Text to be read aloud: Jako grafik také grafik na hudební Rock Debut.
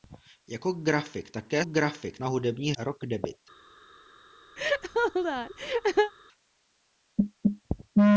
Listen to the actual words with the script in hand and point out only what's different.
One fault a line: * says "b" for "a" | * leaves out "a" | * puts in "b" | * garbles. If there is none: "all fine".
all fine